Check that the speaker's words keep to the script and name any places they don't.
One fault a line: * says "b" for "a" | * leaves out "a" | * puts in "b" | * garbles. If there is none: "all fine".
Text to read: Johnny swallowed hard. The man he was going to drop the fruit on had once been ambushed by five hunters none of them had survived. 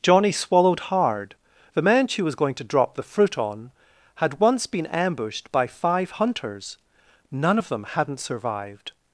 * says "she" for "he"
* says "hadn't" for "had"